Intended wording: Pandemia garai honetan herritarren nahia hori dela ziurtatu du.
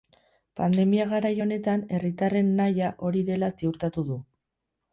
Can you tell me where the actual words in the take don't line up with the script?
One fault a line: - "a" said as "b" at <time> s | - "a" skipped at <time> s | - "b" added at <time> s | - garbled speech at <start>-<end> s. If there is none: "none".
none